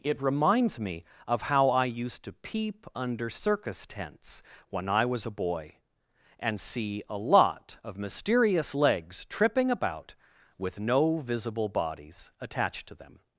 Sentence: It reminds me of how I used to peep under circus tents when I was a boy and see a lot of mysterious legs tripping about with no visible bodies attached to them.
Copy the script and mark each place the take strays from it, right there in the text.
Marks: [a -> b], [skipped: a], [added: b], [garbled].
It reminds me of how I used to peep under circus tents when I was a boy and see a lot of mysterious legs tripping about with no visible bodies attached to them.